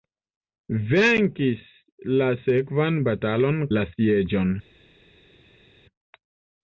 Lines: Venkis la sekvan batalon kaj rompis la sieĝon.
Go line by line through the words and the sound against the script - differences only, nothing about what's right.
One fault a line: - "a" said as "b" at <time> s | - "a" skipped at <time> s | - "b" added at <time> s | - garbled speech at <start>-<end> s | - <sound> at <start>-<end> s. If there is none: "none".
- "kaj rompis" skipped at 3.6 s